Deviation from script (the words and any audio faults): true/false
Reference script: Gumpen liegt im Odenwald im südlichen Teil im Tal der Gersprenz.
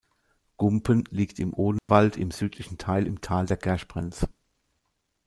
true